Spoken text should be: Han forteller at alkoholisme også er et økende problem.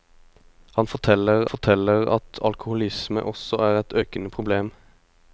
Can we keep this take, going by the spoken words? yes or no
no